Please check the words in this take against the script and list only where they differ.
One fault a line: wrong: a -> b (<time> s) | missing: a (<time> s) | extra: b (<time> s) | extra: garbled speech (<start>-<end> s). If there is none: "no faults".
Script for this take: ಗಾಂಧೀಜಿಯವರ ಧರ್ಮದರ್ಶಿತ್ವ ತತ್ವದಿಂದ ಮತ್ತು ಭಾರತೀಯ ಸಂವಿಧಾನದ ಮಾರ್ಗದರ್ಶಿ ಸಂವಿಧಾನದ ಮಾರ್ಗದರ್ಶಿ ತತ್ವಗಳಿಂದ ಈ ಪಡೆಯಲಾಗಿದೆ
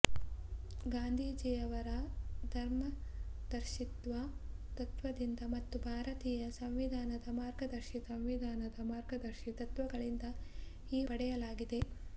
no faults